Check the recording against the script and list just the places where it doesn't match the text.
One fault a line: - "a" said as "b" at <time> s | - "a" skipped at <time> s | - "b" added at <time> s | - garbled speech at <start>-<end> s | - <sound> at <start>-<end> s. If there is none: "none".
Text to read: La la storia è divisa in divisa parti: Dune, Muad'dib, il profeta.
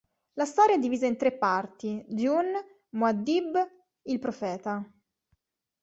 - "la" skipped at 0.5 s
- "divisa" said as "tre" at 1.1 s